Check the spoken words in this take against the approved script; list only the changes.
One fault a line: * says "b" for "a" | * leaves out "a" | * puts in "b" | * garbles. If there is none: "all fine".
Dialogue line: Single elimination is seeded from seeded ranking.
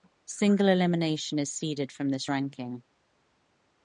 * says "this" for "seeded"